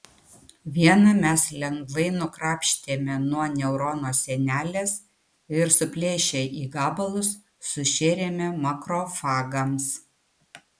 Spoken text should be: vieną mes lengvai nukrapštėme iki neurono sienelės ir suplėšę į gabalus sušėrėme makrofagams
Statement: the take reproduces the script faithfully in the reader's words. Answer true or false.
false